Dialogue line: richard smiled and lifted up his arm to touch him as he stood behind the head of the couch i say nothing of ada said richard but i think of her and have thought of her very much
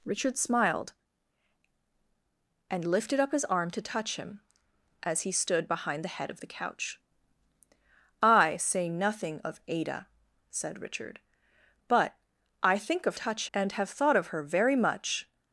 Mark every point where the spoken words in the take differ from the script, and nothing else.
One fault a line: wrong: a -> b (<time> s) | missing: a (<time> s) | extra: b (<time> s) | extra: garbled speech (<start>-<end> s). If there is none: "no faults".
wrong: her -> touch (13.1 s)